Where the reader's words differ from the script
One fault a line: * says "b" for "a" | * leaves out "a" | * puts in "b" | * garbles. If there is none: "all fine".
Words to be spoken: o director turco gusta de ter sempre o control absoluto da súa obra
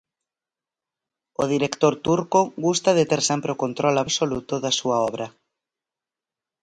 all fine